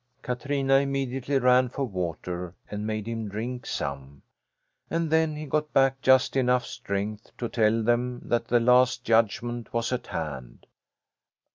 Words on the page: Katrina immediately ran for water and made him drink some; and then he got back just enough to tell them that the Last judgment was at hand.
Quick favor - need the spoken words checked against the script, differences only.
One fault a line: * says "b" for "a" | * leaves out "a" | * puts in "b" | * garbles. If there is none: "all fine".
* puts in "strength"